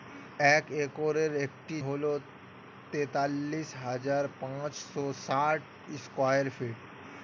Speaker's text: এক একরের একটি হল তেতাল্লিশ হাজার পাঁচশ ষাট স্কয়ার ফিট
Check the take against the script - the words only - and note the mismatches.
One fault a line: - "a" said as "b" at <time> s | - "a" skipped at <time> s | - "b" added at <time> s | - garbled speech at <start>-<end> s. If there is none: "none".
none